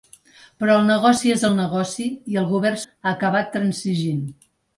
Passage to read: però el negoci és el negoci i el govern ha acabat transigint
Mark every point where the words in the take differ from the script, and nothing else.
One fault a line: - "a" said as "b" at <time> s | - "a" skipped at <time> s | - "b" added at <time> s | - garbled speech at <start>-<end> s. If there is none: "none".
none